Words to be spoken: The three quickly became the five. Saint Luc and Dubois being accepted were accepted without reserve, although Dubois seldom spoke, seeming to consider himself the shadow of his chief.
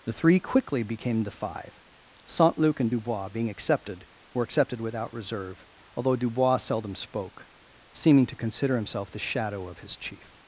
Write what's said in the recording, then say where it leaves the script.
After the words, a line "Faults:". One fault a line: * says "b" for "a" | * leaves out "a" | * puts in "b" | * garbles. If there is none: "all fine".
The three quickly became the five. Saint Luc and Dubois being accepted were accepted without reserve, although Dubois seldom spoke, seeming to consider himself the shadow of his chief.
Faults:
all fine